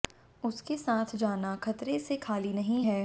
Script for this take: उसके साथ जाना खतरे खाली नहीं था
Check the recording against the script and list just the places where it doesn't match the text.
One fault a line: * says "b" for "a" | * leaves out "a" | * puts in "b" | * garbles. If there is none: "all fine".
* puts in "से"
* says "है" for "था"